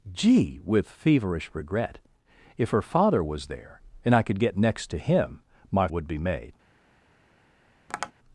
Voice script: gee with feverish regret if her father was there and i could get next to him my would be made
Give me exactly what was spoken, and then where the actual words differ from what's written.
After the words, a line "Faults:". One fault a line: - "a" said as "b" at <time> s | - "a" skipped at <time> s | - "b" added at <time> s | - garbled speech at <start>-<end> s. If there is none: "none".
gee with feverish regret if her father was there and i could get next to him my would be made
Faults:
none